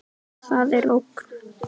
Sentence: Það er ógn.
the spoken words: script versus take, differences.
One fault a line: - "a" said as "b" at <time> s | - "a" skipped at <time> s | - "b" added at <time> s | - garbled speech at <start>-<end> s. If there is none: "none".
none